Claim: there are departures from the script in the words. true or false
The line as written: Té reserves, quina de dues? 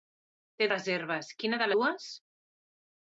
false